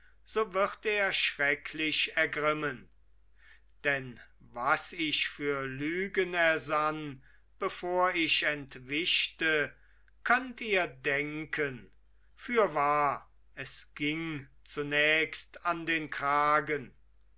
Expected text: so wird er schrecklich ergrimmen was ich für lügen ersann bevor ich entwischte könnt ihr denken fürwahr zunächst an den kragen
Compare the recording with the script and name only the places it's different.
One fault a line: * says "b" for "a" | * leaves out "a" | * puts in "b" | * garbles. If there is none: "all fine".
* puts in "denn"
* puts in "es ging"